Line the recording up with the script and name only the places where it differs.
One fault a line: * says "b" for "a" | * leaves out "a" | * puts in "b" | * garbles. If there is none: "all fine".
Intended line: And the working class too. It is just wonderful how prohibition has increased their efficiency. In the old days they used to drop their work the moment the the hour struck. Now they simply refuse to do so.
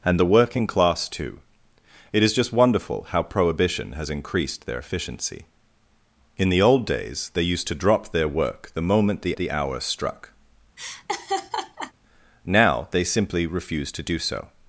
all fine